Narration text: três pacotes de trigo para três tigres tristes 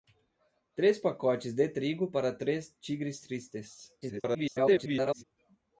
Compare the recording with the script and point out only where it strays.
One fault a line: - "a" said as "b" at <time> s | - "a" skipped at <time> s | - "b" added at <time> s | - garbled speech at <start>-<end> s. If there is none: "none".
- garbled speech at 4.0-5.2 s